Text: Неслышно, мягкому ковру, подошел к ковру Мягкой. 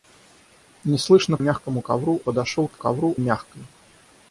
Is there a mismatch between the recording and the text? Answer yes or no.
no